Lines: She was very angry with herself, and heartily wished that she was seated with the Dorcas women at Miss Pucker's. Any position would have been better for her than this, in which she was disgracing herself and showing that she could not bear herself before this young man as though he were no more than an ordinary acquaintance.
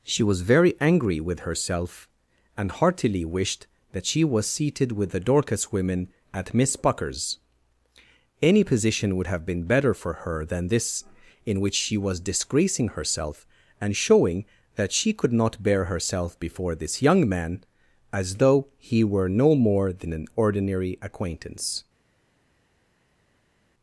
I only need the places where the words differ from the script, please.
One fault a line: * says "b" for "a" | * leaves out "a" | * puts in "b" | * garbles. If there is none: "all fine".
all fine